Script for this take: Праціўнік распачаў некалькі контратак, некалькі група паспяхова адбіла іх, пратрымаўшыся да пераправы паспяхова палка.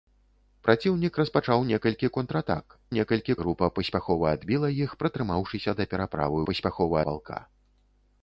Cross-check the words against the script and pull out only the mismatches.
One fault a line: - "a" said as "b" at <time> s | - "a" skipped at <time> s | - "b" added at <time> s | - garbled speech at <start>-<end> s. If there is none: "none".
none